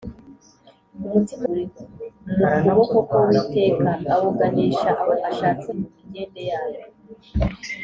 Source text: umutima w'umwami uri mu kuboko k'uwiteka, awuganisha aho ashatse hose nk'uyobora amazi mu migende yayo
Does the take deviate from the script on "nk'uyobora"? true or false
true